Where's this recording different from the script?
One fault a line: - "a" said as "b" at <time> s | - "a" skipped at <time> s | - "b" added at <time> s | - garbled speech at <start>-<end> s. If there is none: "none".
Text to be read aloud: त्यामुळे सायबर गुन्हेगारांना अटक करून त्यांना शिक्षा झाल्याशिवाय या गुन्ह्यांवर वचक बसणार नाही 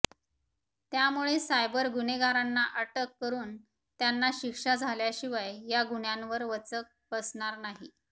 none